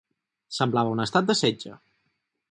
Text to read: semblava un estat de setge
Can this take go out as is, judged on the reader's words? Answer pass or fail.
pass